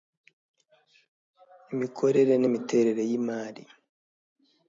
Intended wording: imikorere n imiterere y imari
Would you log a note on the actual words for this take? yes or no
no